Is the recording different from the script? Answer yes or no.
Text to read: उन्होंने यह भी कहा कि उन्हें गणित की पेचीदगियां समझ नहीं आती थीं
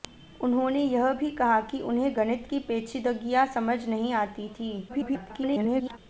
yes